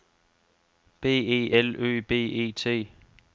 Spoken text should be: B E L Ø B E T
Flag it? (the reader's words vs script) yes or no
no